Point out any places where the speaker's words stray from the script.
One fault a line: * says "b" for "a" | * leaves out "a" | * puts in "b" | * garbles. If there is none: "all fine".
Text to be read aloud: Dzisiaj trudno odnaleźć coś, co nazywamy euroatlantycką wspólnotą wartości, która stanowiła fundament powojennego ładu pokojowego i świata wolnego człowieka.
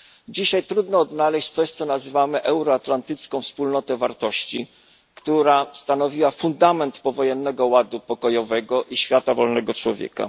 all fine